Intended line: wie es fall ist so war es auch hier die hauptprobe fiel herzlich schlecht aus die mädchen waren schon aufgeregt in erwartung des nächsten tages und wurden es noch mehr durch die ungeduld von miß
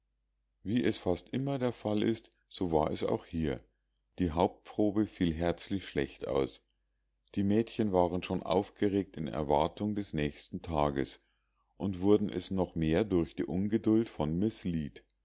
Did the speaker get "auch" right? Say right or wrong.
right